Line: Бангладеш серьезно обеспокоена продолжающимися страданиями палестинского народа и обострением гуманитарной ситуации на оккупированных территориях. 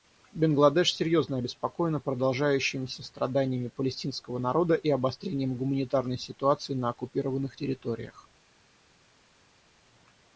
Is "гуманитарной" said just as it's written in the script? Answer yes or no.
yes